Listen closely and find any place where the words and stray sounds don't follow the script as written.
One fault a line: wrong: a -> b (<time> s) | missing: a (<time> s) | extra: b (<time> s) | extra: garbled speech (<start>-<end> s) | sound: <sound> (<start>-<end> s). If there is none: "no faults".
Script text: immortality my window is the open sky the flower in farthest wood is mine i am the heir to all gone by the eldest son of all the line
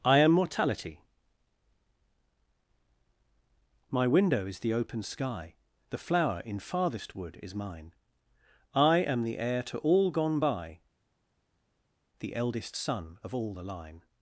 wrong: immortality -> i am mortality (0.0 s)